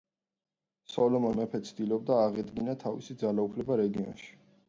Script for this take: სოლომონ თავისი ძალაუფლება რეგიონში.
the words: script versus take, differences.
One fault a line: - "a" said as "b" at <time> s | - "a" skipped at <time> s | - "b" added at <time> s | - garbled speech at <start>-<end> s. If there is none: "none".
- "მეფე ცდილობდა აღედგინა" added at 1.4 s